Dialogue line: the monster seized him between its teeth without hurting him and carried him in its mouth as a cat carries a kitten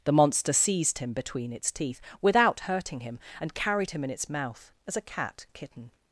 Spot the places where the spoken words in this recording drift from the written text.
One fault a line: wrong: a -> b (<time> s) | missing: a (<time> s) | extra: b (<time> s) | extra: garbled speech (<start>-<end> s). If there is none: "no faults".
missing: carries (5.4 s)